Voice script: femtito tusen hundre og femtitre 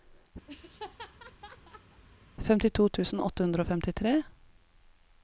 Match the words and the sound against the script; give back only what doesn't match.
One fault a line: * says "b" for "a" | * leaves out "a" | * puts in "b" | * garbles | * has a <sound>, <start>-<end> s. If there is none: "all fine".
* has a laugh, 0.5-2.0 s
* puts in "åtte"